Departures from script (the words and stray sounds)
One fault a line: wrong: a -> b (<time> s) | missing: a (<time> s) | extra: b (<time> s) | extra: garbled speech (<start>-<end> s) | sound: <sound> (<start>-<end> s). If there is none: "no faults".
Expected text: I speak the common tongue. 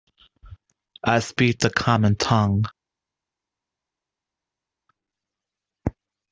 no faults